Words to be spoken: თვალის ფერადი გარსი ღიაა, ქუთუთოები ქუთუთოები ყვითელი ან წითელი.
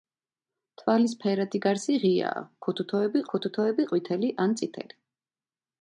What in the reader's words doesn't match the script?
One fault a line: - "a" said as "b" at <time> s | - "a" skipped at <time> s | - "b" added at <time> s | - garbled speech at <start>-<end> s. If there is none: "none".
none